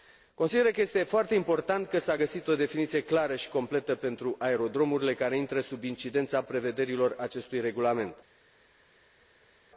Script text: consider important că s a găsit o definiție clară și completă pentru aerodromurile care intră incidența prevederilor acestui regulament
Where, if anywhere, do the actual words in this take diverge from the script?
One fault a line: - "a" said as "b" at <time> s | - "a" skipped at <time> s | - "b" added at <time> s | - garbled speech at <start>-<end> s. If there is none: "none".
- "că este foarte" added at 0.7 s
- "sub" added at 5.6 s